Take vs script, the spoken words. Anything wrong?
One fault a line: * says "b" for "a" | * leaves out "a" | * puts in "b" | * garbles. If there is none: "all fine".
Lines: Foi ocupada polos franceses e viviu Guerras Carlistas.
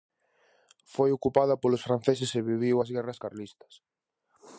* puts in "as"